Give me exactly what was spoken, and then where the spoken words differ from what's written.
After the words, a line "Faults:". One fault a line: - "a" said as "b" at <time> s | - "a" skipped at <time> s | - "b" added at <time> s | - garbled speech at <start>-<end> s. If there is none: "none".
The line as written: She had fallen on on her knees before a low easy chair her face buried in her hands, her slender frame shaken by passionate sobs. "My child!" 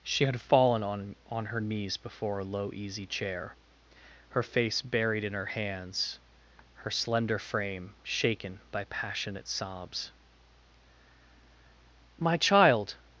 She had fallen on on her knees before a low easy chair her face buried in her hands, her slender frame shaken by passionate sobs. "My child!"
Faults:
none